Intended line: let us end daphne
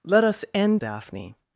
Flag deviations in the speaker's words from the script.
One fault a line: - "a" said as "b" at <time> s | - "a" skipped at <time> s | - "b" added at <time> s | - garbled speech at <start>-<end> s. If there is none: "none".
none